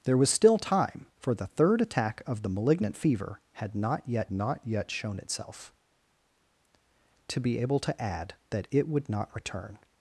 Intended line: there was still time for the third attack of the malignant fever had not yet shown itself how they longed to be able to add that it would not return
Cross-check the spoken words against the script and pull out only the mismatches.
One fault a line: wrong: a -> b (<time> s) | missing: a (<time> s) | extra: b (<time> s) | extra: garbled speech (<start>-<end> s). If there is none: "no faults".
extra: not yet (4.3 s)
missing: how they longed (5.7 s)